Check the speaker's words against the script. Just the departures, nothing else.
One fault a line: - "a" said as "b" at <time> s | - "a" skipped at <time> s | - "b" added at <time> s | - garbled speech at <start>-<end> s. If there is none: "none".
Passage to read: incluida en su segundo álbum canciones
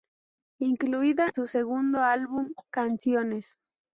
- "en" skipped at 1.3 s